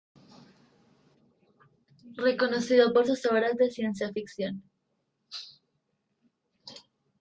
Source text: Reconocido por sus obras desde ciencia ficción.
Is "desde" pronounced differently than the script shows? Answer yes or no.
yes